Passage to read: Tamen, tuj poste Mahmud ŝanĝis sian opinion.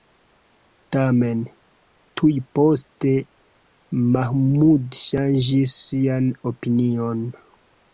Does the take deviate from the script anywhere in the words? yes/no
no